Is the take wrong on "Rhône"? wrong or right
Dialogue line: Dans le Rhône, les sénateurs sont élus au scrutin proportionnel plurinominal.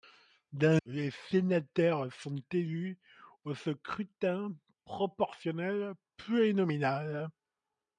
wrong